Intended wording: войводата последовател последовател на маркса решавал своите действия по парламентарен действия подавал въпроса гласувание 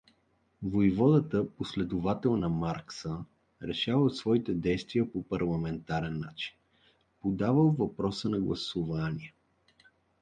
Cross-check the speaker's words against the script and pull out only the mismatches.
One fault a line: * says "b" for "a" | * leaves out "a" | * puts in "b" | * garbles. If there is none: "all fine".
* leaves out "последовател"
* says "начин" for "действия"
* puts in "на"